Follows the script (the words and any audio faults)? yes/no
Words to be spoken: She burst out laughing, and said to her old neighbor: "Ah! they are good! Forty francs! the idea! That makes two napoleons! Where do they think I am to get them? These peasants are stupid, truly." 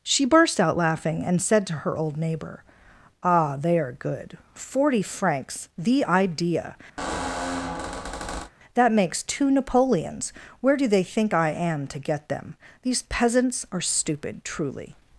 no